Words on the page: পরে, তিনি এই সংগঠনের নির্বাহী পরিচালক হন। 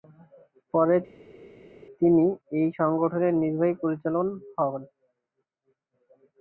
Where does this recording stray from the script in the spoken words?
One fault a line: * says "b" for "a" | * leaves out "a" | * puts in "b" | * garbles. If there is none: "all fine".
all fine